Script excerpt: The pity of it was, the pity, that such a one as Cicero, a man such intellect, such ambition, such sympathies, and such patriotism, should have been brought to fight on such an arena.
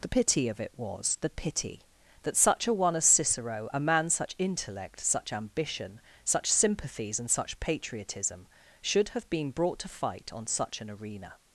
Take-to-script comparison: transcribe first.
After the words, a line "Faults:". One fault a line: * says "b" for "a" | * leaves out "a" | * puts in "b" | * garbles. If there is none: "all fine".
The pity of it was, the pity, that such a one as Cicero, a man such intellect, such ambition, such sympathies, and such patriotism, should have been brought to fight on such an arena.
Faults:
all fine